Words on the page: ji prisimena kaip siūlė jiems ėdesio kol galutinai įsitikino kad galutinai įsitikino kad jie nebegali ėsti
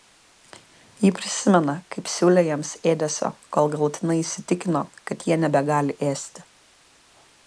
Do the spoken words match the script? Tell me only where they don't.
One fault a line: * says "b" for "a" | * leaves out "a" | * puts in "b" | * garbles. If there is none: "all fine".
* leaves out "galutinai įsitikino kad"